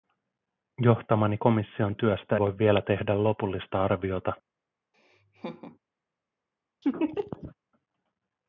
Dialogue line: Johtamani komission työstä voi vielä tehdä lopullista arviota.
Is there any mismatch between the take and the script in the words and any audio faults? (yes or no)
yes